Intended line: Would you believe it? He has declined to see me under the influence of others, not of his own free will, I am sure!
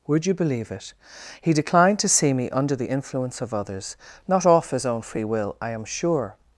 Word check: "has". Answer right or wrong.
wrong